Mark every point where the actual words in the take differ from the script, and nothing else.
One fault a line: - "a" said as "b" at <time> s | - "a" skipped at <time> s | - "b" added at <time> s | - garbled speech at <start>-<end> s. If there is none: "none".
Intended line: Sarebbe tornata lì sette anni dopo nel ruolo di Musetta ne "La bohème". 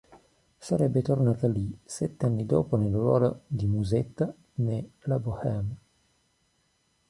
none